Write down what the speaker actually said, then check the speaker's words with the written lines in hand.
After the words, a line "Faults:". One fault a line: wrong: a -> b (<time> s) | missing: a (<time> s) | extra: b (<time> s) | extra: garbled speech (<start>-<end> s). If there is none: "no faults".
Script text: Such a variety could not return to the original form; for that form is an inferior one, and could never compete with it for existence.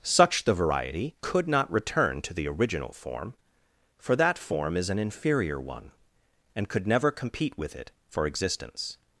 Such the variety could not return to the original form; for that form is an inferior one, and could never compete with it for existence.
Faults:
wrong: a -> the (0.4 s)